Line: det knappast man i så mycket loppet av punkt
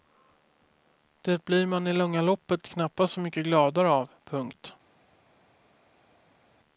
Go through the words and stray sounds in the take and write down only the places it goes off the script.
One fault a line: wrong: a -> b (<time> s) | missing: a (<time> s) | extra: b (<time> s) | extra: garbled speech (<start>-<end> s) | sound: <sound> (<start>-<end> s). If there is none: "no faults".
wrong: knappast -> blir (1.4 s)
extra: långa loppet knappast (1.9 s)
wrong: loppet -> gladare (3.4 s)